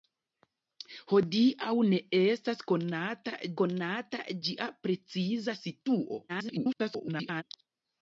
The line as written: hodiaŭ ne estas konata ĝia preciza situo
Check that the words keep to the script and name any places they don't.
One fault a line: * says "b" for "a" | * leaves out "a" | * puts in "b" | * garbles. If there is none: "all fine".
* puts in "konata"
* garbles